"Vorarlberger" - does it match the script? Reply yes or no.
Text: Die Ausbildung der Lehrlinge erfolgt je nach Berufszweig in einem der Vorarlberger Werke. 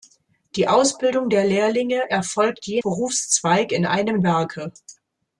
no